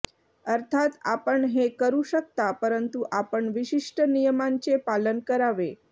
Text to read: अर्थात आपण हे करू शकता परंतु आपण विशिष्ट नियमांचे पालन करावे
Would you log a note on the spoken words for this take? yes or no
no